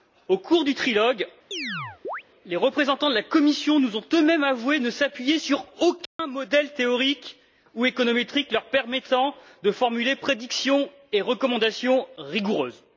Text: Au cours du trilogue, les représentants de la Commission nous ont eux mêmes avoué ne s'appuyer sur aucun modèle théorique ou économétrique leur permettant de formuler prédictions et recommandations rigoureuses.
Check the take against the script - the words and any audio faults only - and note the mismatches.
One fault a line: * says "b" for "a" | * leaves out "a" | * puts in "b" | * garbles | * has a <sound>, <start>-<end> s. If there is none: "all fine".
* has a chirp, 1.5-2.2 s
* has a dropout, 6.1-6.2 s